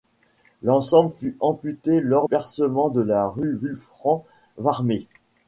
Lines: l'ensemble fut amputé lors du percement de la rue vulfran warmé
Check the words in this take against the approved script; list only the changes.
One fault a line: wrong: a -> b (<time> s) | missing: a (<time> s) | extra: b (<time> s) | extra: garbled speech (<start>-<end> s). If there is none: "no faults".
missing: du (2.3 s)